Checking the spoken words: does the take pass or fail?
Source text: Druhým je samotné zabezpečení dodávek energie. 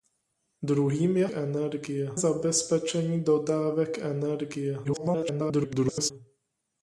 fail